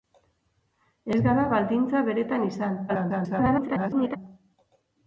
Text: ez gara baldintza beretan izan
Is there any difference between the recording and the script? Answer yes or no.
yes